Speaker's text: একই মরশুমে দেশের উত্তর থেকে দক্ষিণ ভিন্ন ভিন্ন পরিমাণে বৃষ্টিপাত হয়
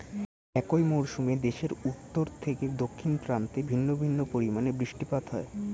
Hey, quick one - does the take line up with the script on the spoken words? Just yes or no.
no